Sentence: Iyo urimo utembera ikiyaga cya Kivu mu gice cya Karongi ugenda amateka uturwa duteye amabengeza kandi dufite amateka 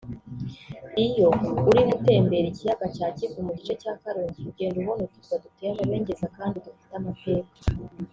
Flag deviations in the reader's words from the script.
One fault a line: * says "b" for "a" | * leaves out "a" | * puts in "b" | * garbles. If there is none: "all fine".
* says "ubona" for "amateka"